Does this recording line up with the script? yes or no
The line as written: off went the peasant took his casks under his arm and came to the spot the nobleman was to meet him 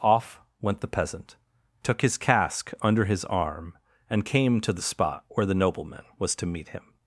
no